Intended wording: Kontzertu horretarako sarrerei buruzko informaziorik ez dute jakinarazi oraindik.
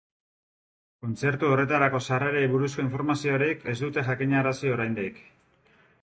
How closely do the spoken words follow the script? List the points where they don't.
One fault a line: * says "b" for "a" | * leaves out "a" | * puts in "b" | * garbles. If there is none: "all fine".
all fine